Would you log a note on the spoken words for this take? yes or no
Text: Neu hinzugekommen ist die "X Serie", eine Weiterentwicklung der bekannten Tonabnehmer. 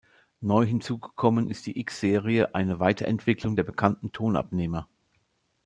no